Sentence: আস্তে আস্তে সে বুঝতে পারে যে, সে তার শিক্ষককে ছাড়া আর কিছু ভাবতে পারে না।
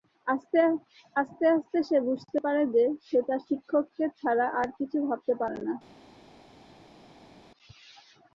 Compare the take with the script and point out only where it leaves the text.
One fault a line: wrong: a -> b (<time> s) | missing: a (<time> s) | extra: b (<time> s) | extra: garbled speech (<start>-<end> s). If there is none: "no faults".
no faults